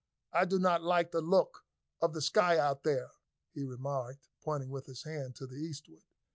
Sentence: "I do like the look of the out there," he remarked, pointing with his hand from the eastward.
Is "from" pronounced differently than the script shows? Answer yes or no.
yes